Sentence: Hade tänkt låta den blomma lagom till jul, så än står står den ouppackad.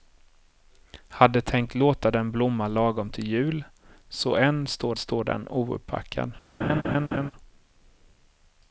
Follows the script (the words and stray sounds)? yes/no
no